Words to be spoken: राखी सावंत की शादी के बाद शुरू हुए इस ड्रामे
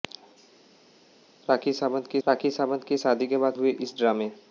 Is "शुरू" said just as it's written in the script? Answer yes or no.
no